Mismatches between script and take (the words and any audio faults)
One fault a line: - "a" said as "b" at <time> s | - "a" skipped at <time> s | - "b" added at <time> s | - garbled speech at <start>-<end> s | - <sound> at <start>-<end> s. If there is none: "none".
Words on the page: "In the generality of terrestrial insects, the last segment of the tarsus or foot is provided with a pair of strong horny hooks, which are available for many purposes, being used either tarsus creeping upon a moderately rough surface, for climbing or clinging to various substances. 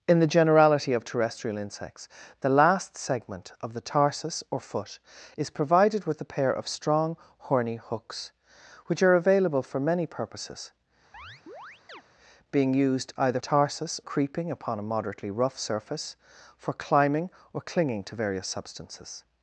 - chirp at 11.1-12.0 s